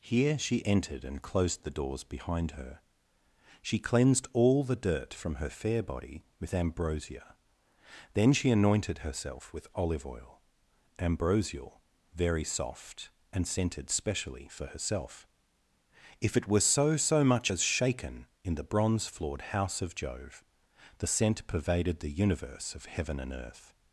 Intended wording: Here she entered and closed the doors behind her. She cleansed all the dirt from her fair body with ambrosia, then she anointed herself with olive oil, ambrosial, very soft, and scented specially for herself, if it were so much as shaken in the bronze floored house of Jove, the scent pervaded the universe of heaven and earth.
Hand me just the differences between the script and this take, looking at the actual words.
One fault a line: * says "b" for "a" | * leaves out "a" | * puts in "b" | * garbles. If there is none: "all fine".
* puts in "so"